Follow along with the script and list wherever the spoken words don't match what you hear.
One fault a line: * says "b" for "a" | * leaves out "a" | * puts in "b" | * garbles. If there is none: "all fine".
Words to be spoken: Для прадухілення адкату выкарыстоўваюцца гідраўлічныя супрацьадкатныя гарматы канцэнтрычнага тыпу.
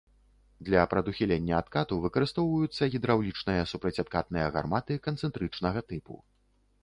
all fine